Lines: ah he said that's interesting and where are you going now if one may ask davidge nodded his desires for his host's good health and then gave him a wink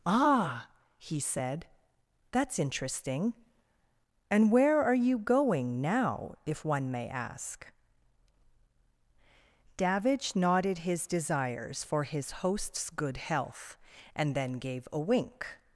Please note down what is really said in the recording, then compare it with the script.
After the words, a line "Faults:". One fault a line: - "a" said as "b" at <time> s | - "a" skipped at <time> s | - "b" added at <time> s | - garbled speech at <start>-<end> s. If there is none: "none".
ah he said that's interesting and where are you going now if one may ask davidge nodded his desires for his host's good health and then gave a wink
Faults:
- "him" skipped at 14.9 s